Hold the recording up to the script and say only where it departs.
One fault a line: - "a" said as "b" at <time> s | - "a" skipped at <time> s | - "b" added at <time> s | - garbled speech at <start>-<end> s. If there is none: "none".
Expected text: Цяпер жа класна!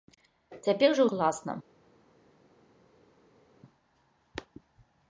none